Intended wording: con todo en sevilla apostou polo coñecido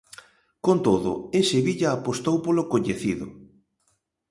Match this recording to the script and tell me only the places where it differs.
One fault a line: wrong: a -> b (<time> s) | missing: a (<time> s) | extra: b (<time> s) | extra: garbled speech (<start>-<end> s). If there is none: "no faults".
no faults